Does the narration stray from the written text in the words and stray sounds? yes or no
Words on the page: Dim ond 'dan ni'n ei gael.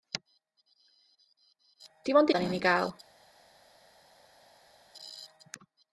no